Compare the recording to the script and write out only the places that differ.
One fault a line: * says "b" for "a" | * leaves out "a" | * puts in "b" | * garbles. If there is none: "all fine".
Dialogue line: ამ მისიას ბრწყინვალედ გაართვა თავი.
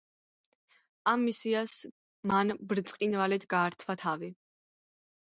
* puts in "მან"